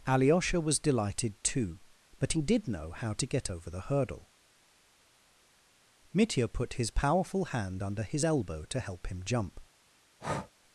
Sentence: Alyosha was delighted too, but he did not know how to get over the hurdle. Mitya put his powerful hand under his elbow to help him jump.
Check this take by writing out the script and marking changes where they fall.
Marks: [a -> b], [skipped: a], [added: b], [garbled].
Alyosha was delighted too, but he did [skipped: not] know how to get over the hurdle. Mitya put his powerful hand under his elbow to help him jump.